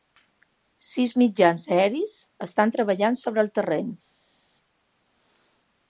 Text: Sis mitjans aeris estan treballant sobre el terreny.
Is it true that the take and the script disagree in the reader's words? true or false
false